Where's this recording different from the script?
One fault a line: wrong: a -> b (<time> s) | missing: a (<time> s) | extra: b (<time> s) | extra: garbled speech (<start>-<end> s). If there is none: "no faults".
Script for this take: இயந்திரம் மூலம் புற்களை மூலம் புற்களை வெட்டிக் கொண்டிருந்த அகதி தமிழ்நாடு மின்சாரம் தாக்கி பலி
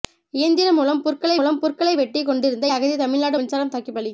no faults